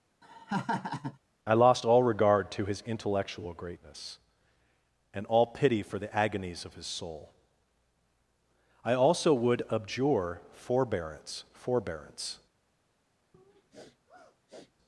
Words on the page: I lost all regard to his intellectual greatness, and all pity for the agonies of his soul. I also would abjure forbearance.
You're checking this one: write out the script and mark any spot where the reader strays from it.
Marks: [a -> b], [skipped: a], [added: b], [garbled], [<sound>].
[laugh] I lost all regard to his intellectual greatness, and all pity for the agonies of his soul. I also would abjure forbearance. [added: forbearance] [sniff]